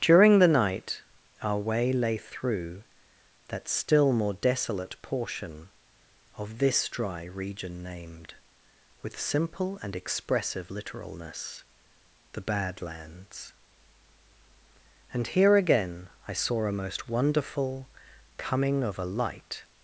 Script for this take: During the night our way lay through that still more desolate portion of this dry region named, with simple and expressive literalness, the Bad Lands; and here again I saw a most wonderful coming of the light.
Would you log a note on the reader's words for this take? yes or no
yes